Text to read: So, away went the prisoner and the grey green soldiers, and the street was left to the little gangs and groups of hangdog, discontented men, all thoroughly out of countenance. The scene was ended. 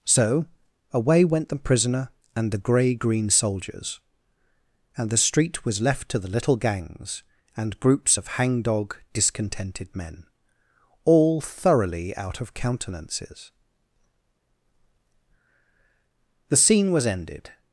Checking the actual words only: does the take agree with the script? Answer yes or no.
no